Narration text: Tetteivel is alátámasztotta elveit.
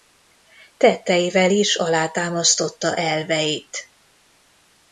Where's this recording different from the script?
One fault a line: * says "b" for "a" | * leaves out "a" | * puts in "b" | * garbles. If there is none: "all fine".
all fine